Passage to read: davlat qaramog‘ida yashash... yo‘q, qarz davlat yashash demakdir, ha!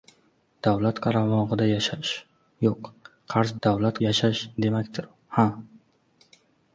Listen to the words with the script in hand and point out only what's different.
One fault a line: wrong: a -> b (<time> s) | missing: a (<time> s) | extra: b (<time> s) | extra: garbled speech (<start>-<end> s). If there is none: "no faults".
no faults